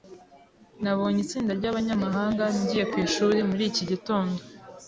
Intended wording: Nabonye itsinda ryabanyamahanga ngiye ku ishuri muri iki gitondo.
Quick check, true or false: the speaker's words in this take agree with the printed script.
true